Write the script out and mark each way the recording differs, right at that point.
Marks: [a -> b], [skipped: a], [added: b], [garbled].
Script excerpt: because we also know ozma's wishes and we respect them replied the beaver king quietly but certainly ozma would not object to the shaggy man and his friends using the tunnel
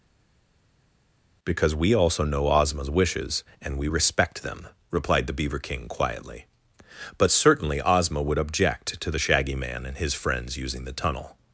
because we also know ozma's wishes and we respect them replied the beaver king quietly but certainly ozma would [skipped: not] object to the shaggy man and his friends using the tunnel